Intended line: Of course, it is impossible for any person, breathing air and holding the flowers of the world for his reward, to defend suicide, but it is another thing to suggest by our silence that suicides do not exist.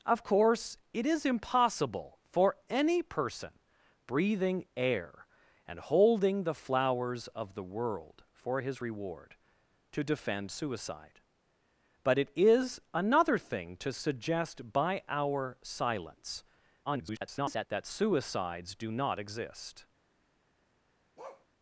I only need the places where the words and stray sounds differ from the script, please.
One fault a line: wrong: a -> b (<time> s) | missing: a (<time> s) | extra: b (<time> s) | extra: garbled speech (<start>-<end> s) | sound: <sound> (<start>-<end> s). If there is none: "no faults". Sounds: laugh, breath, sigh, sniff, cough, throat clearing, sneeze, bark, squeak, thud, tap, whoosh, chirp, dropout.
extra: garbled speech (16.9-17.7 s)
sound: bark (21.2-21.5 s)